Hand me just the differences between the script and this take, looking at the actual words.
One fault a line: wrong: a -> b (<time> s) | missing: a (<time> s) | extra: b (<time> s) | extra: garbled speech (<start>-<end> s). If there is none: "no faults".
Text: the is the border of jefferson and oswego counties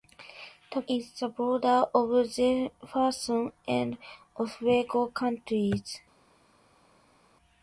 no faults